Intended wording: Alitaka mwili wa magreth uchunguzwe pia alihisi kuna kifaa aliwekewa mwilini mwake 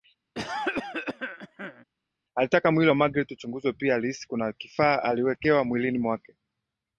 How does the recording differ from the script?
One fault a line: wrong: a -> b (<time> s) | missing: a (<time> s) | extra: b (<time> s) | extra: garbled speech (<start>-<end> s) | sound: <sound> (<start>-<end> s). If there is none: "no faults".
sound: cough (0.3-1.8 s)